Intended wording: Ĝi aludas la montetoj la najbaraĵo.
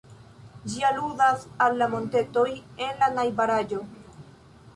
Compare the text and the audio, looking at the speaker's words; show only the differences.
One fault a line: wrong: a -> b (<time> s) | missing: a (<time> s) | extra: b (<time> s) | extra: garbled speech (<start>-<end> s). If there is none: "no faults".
extra: al (1.7 s)
extra: en (2.9 s)